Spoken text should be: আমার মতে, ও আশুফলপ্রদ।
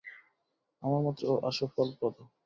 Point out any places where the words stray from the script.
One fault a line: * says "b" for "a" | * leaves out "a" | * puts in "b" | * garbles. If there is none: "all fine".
all fine